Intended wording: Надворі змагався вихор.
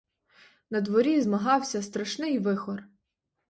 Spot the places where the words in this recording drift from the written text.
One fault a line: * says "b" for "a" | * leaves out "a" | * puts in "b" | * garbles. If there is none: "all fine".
* puts in "страшний"